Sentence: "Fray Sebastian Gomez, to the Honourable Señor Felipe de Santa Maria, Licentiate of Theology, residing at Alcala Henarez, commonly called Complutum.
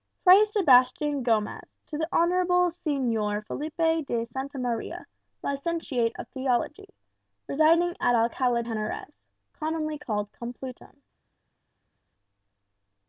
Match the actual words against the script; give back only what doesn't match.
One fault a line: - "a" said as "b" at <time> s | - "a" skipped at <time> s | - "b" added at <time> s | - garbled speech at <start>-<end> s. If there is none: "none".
none